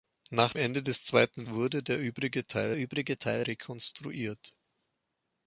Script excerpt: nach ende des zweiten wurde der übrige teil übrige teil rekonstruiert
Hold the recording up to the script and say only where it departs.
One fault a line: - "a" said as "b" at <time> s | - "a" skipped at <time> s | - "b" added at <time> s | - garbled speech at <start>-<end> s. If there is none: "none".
none